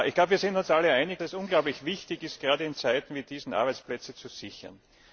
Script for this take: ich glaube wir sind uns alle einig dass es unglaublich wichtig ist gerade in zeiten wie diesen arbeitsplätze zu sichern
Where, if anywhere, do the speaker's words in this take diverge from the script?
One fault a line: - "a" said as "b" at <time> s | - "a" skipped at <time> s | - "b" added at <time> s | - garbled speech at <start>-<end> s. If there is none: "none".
- "dass" skipped at 1.2 s